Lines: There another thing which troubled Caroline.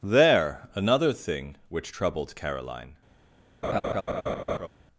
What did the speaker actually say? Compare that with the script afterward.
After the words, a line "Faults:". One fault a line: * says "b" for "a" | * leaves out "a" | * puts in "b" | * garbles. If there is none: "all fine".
There another thing which troubled Caroline.
Faults:
all fine